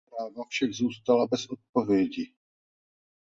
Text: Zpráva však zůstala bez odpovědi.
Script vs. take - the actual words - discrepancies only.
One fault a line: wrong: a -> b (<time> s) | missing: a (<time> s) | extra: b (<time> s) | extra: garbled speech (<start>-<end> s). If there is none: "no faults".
no faults